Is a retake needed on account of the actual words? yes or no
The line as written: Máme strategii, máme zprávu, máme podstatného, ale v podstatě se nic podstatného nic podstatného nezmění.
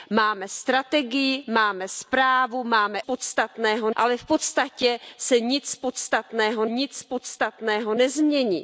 no